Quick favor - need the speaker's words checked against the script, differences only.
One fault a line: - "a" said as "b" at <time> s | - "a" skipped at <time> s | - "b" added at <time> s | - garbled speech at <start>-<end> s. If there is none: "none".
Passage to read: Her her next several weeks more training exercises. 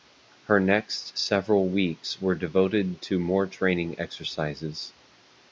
- "her" skipped at 0.6 s
- "were devoted to" added at 2.2 s